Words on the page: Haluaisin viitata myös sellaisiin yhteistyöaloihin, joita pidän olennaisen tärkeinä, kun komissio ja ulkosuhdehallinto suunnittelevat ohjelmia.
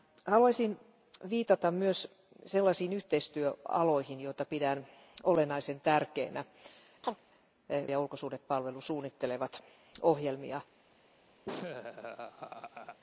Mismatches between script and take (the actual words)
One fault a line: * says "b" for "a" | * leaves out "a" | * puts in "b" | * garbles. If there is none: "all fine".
* leaves out "kun komissio"